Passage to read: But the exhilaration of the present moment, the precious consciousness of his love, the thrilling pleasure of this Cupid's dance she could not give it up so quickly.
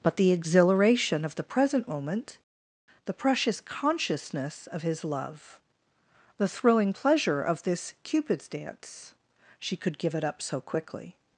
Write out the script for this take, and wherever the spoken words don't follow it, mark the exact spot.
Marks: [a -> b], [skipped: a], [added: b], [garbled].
But the exhilaration of the present moment, the precious consciousness of his love, the thrilling pleasure of this Cupid's dance she could [skipped: not] give it up so quickly.